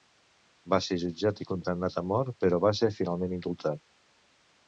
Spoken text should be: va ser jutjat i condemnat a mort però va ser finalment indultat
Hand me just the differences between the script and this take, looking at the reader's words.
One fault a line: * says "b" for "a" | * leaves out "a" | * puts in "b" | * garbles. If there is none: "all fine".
all fine